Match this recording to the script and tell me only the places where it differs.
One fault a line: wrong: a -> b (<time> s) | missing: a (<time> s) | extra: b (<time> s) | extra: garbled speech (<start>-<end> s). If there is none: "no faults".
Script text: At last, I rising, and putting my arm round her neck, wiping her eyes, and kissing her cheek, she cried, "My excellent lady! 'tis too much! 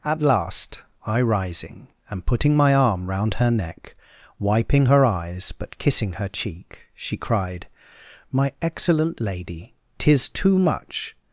wrong: and -> but (5.5 s)